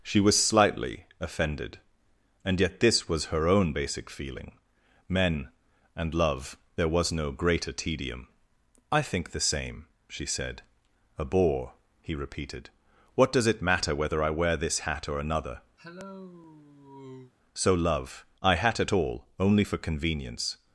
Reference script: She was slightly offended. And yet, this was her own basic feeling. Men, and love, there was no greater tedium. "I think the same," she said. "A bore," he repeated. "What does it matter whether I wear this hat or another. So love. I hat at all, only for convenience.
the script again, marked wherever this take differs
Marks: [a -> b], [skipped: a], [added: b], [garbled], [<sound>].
She was slightly offended. And yet, this was her own basic feeling. Men, and love, there was no greater tedium. "I think the same," she said. "A bore," he repeated. "What does it matter whether I wear this hat or another. [cough] So love. I hat at all, only for convenience.